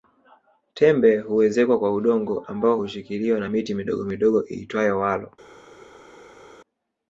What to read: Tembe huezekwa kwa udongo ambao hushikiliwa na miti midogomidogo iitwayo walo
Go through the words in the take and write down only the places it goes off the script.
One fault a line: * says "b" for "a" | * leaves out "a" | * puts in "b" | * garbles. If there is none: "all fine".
all fine